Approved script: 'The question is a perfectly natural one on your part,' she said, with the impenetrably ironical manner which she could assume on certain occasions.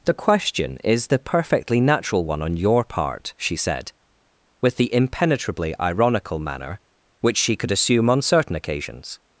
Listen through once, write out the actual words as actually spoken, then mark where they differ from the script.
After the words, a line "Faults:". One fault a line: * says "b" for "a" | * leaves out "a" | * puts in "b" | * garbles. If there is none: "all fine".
'The question is the perfectly natural one on your part,' she said, with the impenetrably ironical manner which she could assume on certain occasions.
Faults:
* says "the" for "a"